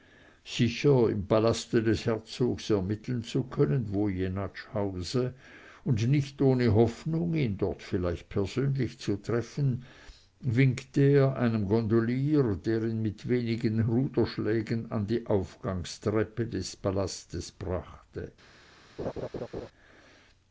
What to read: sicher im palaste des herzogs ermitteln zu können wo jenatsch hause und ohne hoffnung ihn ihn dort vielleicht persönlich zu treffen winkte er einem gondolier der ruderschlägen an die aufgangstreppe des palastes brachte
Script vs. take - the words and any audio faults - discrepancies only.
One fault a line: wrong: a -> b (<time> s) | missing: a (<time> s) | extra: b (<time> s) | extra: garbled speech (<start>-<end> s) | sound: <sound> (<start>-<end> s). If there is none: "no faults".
extra: nicht (6.1 s)
missing: ihn (7.5 s)
extra: ihn mit wenigen (12.8 s)
sound: laugh (19.0-19.7 s)